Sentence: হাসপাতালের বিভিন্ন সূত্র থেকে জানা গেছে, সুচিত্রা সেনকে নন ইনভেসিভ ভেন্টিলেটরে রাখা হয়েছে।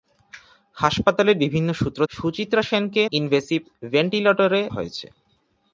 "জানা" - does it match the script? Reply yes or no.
no